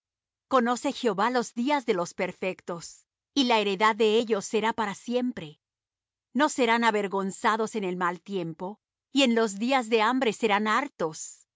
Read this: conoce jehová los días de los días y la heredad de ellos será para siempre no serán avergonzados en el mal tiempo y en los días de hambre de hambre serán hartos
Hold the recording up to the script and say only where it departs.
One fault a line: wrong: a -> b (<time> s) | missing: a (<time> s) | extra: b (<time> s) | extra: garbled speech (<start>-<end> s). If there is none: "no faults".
wrong: días -> perfectos (2.1 s)
missing: de hambre (10.3 s)